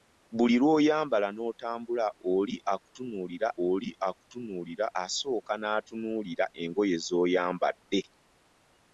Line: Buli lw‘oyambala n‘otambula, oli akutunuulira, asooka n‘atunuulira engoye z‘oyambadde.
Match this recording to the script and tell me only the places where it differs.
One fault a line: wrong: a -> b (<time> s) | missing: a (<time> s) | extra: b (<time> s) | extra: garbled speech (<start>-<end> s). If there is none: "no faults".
extra: oli akutunuulira (3.7 s)